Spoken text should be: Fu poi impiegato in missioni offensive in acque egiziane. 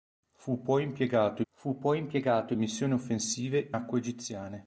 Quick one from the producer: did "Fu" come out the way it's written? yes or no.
yes